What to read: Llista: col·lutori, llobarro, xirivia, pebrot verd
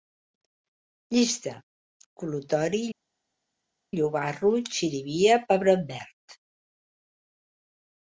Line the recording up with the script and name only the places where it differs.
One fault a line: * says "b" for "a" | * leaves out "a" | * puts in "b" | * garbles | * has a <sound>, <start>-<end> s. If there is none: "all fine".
all fine